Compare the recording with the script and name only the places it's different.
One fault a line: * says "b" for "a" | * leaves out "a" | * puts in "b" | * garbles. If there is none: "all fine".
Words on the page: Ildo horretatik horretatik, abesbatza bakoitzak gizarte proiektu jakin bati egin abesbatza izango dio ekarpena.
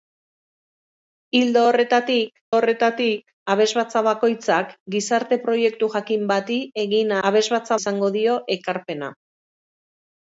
all fine